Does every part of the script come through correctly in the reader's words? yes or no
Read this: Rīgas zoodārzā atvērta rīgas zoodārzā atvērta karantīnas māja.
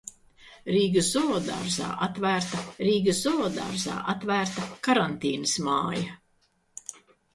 yes